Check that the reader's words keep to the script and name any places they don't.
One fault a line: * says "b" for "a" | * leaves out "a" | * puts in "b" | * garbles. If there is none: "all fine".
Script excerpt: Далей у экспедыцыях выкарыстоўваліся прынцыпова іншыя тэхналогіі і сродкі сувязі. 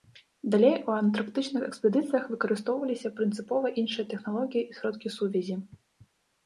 * puts in "антарктычных"